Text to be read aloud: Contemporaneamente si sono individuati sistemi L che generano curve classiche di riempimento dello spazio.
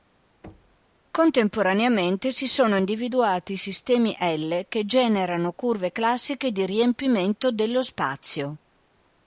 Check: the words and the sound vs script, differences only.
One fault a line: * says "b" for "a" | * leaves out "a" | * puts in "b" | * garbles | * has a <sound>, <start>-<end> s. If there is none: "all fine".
* has a thud, 0.4-0.8 s